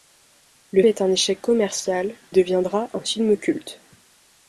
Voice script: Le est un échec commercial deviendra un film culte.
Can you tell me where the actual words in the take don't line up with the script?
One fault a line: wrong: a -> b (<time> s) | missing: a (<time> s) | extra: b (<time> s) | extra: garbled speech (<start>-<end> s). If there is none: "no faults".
no faults